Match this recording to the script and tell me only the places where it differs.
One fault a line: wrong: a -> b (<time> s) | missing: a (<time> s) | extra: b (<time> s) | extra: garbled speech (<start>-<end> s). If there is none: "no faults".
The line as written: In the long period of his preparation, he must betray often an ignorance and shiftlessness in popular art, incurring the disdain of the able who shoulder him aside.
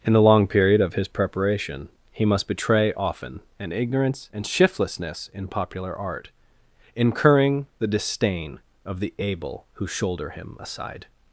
no faults